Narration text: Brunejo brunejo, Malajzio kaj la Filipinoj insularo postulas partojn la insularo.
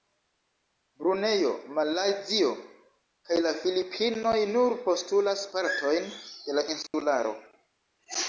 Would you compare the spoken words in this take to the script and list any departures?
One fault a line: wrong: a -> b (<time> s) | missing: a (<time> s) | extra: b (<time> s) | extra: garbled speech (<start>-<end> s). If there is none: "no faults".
missing: brunejo (1.5 s)
wrong: insularo -> nur (4.5 s)
extra: de (6.5 s)